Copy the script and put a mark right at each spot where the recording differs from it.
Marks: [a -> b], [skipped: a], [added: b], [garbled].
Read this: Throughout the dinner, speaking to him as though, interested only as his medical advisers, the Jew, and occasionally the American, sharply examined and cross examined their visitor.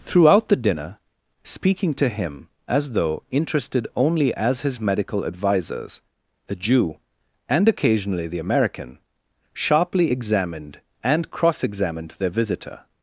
Throughout the dinner, speaking to him as though, interested only as his medical advisers, the Jew, and occasionally the American, sharply examined and cross examined their visitor.